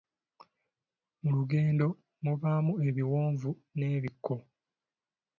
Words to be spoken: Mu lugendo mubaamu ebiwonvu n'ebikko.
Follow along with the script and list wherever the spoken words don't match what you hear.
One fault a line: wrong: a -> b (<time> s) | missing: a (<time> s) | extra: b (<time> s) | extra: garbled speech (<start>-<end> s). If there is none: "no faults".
no faults